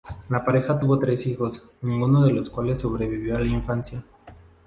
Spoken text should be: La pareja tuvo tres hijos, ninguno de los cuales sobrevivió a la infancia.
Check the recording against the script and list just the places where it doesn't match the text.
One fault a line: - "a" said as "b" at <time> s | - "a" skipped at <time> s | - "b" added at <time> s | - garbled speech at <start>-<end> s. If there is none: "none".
none